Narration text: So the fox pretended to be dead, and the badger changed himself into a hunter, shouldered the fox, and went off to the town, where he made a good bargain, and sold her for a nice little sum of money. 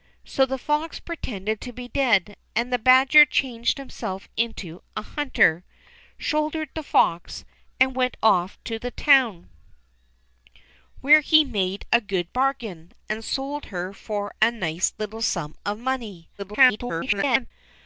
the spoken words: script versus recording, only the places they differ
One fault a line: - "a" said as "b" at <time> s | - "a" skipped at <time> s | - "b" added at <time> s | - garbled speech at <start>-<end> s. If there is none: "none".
- garbled speech at 16.4-17.5 s